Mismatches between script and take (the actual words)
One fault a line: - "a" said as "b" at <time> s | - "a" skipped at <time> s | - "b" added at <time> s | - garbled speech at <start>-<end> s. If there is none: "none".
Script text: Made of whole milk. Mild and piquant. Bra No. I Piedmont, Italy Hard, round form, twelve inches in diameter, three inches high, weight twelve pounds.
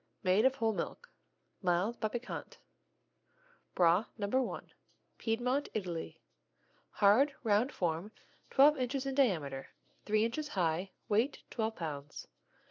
- "and" said as "but" at 2.0 s